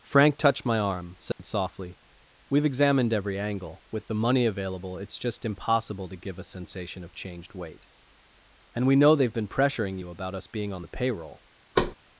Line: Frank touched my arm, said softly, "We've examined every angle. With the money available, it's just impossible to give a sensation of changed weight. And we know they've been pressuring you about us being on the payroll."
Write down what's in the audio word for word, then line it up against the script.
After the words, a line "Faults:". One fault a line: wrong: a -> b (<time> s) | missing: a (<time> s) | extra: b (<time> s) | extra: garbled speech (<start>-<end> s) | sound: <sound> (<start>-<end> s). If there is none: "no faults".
Frank touched my arm, said softly, "We've examined every angle. With the money available, it's just impossible to give a sensation of changed weight. And we know they've been pressuring you about us being on the payroll."
Faults:
sound: dropout (1.3-1.4 s)
sound: thud (11.8-12.0 s)